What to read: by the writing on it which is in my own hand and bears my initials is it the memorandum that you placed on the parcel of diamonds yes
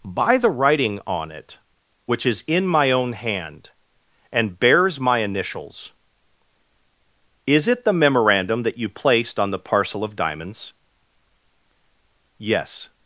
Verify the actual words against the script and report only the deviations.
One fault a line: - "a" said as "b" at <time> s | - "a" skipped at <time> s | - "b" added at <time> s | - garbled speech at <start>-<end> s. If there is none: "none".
none